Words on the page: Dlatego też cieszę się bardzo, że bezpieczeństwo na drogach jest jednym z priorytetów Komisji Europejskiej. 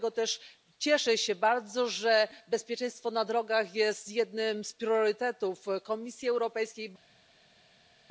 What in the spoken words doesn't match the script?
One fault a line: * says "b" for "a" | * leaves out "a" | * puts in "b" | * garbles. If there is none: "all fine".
all fine